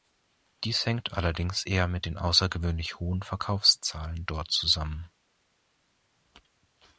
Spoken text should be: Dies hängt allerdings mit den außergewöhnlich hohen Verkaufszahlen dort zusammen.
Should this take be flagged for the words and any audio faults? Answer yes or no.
yes